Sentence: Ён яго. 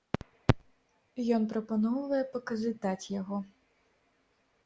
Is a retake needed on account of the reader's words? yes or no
yes